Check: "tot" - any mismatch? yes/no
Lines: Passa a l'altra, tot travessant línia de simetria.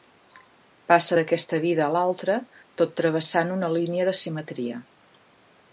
no